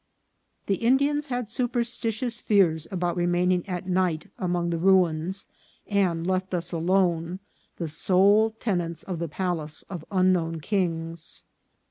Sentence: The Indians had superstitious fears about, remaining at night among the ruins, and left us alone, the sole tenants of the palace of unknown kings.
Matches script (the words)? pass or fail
pass